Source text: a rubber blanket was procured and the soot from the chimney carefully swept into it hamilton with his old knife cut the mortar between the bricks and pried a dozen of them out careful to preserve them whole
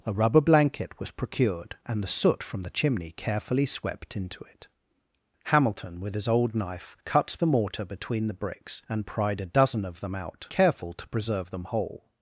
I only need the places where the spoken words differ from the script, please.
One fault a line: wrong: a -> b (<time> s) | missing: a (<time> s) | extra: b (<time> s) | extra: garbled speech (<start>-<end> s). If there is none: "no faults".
no faults